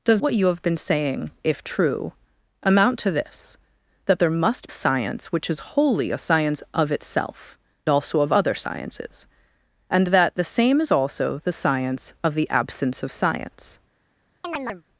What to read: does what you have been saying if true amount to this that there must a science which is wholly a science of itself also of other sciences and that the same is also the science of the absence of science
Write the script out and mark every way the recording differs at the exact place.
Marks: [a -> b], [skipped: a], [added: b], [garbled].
does what you have been saying if true amount to this that there must a science which is wholly a science of itself also of other sciences and that the same is also the science of the absence of science